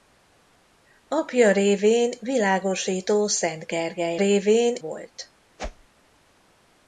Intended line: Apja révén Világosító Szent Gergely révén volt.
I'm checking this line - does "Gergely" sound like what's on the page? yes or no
yes